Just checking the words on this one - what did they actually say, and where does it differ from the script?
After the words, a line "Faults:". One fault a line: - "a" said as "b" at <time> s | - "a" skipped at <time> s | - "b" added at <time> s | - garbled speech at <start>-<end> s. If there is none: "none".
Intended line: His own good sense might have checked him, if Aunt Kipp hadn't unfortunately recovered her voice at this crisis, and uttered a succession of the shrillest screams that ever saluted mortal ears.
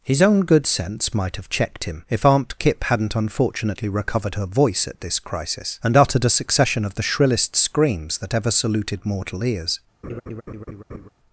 His own good sense might have checked him, if Aunt Kipp hadn't unfortunately recovered her voice at this crisis, and uttered a succession of the shrillest screams that ever saluted mortal ears.
Faults:
none